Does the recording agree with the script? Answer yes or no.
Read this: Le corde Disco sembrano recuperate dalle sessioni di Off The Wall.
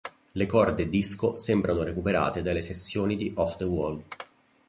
yes